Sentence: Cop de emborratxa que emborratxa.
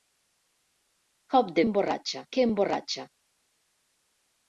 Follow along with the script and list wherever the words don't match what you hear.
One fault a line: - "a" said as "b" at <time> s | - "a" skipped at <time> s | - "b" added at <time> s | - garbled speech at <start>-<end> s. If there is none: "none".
none